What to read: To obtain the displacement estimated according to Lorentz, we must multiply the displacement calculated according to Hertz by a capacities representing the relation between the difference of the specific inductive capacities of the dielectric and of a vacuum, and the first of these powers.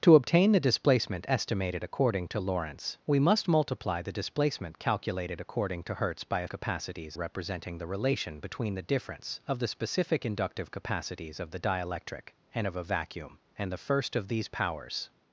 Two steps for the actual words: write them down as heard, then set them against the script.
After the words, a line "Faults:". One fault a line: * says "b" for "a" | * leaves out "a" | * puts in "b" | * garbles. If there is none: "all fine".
To obtain the displacement estimated according to Lorentz, we must multiply the displacement calculated according to Hertz by a capacities representing the relation between the difference of the specific inductive capacities of the dielectric and of a vacuum, and the first of these powers.
Faults:
all fine